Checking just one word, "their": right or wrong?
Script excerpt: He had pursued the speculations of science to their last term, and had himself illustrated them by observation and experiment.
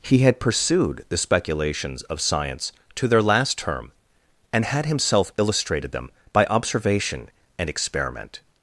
right